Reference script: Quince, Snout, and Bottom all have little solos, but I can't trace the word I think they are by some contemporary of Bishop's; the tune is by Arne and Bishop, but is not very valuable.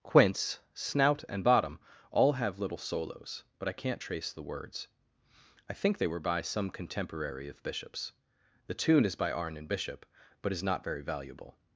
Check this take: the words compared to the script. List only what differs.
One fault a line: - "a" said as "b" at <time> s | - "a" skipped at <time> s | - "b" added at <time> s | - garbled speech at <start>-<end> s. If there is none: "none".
- "word" said as "words" at 4.4 s
- "are" said as "were" at 6.1 s